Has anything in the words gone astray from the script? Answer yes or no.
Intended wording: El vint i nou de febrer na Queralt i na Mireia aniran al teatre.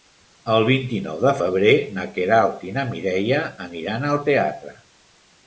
no